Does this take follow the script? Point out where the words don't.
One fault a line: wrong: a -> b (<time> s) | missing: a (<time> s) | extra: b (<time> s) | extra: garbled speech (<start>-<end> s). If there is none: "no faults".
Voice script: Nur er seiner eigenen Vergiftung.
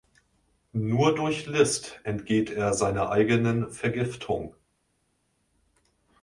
extra: durch List entgeht (1.1 s)